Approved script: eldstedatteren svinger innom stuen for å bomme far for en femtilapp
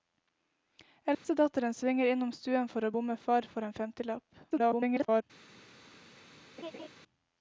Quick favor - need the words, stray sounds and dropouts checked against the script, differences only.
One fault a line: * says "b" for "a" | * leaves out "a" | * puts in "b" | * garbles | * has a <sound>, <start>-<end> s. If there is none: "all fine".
* has a dropout, 1.1-1.2 s
* garbles
* has a laugh, 6.6-6.9 s